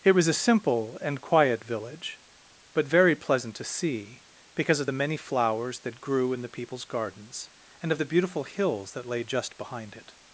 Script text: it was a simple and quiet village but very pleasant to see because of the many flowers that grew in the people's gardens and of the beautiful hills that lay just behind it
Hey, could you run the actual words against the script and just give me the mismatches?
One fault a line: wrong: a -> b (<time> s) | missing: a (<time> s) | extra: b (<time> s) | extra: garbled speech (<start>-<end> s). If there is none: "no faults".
no faults